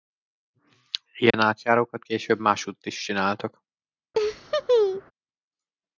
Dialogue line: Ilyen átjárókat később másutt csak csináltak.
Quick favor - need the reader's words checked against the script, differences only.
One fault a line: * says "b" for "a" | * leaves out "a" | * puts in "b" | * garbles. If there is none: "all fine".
* says "is" for "csak"